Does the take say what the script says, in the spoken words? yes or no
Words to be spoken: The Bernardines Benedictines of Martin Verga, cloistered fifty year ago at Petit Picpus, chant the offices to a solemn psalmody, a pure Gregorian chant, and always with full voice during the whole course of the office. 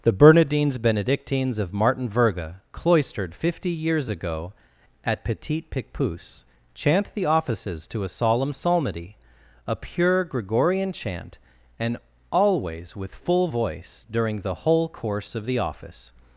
no